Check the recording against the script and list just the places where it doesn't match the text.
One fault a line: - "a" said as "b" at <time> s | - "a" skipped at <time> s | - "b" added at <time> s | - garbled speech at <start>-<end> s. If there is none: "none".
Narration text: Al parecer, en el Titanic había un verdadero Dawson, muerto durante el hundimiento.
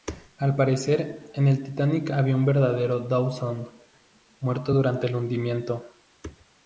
none